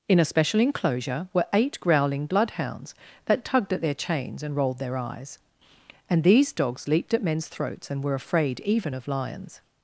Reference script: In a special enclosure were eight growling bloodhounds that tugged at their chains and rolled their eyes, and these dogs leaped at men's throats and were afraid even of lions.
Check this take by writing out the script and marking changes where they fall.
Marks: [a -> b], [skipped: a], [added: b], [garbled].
In a special enclosure were eight growling bloodhounds that tugged at their chains and rolled their eyes, and these dogs leaped at men's throats and were afraid even of lions.